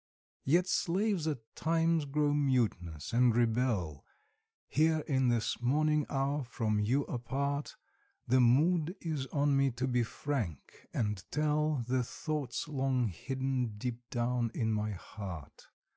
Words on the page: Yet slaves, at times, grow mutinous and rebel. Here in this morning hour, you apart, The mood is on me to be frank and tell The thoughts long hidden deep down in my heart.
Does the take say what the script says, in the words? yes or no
no